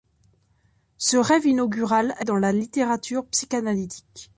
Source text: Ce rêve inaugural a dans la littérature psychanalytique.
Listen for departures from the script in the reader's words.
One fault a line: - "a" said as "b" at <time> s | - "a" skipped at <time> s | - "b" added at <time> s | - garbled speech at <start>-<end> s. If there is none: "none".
none